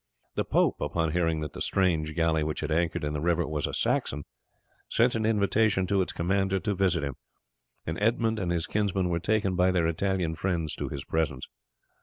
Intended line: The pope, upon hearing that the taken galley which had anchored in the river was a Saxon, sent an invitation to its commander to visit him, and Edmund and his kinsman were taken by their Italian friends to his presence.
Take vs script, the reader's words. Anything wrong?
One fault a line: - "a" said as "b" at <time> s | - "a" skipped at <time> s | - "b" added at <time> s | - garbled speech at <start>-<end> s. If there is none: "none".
- "taken" said as "strange" at 1.6 s